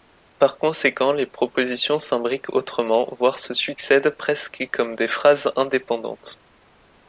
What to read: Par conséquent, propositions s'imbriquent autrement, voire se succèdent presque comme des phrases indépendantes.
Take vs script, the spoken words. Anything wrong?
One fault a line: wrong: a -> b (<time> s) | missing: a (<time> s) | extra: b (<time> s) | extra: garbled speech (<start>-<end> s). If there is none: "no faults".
extra: les (1.1 s)